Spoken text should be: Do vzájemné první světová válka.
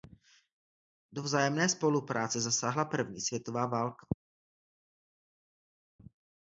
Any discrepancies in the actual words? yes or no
yes